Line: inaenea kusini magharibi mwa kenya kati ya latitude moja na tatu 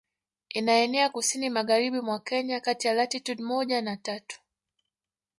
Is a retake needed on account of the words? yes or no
no